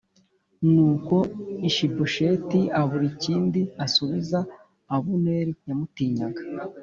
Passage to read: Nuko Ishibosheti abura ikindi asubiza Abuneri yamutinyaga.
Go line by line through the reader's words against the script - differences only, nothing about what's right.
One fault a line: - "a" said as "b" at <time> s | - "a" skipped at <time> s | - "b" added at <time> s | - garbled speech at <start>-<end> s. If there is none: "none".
none